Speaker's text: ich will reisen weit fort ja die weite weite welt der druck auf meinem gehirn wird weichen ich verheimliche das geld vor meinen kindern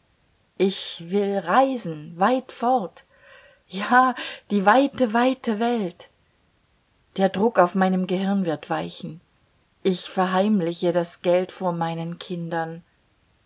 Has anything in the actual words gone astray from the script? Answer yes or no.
no